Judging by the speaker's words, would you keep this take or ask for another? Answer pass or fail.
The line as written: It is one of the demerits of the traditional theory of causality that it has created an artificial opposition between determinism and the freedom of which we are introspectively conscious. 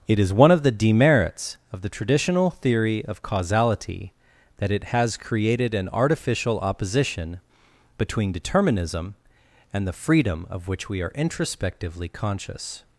pass